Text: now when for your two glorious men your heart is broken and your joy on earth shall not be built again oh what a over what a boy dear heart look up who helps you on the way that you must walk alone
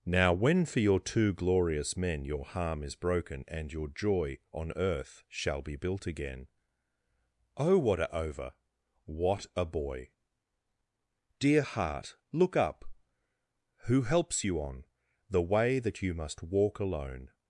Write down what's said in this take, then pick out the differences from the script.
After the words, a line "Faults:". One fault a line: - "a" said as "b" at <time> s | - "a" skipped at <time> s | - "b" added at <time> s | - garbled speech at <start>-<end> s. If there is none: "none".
now when for your two glorious men your harm is broken and your joy on earth shall be built again oh what a over what a boy dear heart look up who helps you on the way that you must walk alone
Faults:
- "heart" said as "harm" at 2.5 s
- "not" skipped at 5.6 s